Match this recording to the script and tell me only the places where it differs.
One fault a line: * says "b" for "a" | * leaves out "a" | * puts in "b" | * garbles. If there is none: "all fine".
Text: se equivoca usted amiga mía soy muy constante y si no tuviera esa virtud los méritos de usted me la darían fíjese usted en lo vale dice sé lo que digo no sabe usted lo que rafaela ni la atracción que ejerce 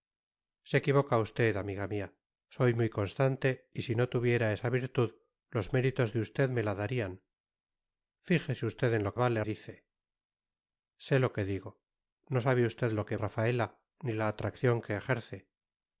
all fine